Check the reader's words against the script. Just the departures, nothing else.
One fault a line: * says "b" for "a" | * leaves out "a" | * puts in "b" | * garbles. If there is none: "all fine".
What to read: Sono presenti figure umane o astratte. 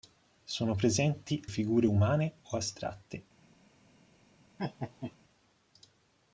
all fine